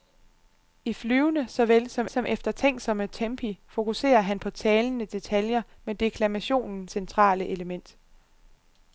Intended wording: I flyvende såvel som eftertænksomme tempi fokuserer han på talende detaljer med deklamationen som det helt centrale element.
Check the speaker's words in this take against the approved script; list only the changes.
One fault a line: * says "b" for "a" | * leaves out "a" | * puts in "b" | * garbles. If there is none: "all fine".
* puts in "som"
* leaves out "som det helt"